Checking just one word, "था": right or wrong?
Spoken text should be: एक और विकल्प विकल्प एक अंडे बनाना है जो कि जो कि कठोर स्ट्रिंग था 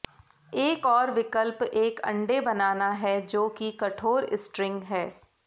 wrong